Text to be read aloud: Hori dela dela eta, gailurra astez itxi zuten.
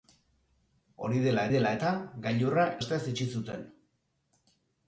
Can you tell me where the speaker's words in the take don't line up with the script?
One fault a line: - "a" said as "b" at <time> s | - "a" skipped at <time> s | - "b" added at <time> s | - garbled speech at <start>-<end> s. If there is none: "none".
none